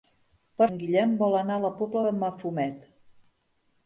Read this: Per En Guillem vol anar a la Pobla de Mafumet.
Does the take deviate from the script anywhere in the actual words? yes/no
no